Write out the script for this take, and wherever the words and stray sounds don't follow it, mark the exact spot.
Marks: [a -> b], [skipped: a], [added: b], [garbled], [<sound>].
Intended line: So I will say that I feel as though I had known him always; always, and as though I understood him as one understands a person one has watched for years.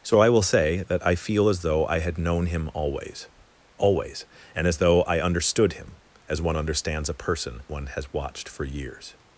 So I will say that I feel as though I had known him always; always, and as though I understood him as one understands a person one has watched for years.